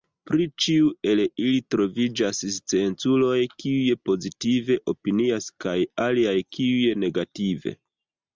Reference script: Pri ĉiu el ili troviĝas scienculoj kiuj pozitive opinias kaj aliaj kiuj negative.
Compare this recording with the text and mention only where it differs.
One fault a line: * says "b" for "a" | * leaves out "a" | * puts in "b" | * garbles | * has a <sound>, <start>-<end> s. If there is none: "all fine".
all fine